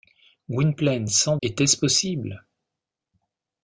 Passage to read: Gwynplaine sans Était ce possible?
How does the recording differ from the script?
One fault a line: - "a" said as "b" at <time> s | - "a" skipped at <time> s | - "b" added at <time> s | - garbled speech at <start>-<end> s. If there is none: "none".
none